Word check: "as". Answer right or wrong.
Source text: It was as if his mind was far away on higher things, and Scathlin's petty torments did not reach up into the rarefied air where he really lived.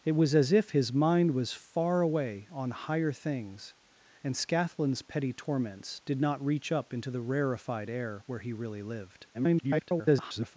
right